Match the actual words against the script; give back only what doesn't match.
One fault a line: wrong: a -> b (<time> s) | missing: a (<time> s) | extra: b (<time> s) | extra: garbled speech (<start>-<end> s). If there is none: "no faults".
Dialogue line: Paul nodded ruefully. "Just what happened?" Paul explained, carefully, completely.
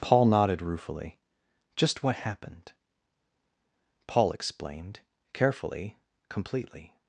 no faults